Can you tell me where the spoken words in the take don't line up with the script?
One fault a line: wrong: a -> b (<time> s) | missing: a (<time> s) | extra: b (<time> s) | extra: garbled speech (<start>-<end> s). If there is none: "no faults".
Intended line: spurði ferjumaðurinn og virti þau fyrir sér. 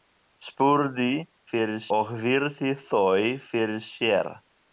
wrong: ferjumaðurinn -> fyrir (1.5 s)